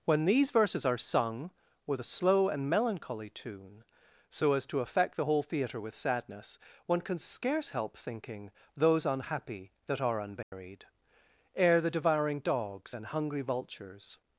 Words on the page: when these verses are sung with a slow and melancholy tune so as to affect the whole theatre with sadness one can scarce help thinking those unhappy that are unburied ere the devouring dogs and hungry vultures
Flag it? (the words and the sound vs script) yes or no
yes